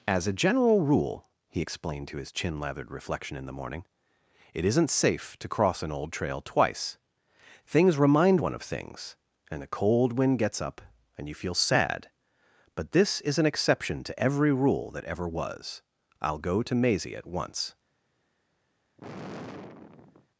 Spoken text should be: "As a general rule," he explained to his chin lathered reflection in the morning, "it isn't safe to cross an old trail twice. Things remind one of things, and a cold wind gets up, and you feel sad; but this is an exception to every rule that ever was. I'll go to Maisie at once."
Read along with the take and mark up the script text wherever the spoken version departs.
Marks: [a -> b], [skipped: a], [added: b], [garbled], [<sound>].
"As a general rule," he explained to his chin lathered reflection in the morning, "it isn't safe to cross an old trail twice. Things remind one of things, and a cold wind gets up, and you feel sad; but this is an exception to every rule that ever was. I'll go to Maisie at once." [sigh]